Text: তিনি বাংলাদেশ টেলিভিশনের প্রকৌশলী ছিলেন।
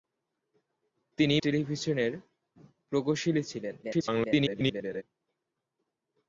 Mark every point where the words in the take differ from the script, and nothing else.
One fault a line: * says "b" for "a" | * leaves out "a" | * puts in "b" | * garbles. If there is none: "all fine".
* leaves out "বাংলাদেশ"
* garbles